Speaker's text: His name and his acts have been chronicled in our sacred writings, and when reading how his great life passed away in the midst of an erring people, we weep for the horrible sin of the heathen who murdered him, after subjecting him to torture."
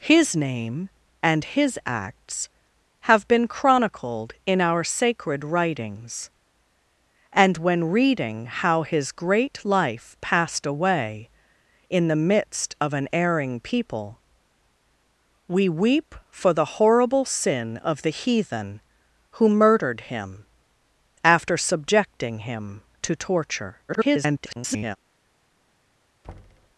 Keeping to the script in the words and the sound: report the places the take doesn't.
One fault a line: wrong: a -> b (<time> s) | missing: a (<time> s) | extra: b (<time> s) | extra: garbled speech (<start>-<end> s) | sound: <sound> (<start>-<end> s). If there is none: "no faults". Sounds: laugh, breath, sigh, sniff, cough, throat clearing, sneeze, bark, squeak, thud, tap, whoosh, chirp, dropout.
extra: garbled speech (23.9-25.0 s)
sound: thud (26.2-26.8 s)